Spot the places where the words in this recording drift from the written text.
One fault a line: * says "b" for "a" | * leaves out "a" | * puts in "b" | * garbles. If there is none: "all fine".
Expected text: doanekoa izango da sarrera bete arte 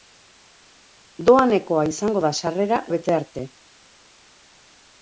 all fine